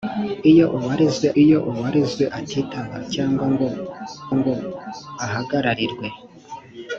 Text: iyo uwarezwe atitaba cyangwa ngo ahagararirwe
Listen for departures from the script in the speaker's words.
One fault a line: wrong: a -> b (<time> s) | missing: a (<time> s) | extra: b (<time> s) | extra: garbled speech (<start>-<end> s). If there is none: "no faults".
extra: iyo uwarezwe (1.4 s)
extra: ngo (4.4 s)